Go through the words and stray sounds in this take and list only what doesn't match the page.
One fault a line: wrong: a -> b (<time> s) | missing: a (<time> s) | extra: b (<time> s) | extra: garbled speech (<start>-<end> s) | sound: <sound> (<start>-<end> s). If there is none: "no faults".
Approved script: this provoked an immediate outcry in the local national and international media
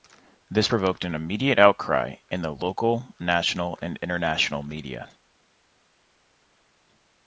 no faults